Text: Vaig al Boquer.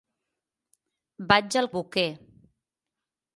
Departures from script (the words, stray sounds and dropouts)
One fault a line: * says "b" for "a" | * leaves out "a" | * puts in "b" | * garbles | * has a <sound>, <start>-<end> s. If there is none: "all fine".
all fine